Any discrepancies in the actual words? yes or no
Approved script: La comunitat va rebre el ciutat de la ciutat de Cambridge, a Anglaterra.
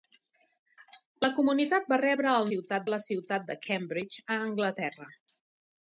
no